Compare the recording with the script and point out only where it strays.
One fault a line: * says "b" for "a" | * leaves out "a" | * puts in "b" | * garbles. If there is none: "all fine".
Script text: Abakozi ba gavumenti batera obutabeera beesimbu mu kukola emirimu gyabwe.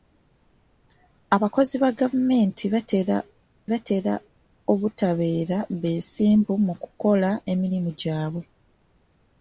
* puts in "batera"